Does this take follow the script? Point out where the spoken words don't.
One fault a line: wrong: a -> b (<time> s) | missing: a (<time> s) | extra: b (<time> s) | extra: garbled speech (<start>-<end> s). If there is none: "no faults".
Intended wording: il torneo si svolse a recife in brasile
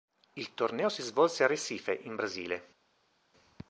no faults